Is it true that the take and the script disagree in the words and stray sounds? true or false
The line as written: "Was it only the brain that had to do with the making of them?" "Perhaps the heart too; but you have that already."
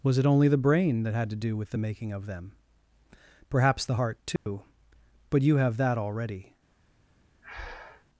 true